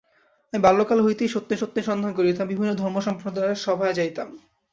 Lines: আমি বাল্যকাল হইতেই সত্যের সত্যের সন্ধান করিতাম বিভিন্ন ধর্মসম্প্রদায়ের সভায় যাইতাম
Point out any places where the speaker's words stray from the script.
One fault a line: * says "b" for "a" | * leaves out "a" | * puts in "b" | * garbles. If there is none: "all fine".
all fine